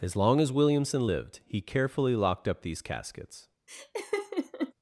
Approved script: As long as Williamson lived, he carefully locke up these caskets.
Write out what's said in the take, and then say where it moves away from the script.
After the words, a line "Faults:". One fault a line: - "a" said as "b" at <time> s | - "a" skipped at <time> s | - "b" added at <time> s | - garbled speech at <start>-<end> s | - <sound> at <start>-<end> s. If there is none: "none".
As long as Williamson lived, he carefully locked up these caskets.
Faults:
- "locke" said as "locked" at 2.1 s
- laugh at 3.7-4.7 s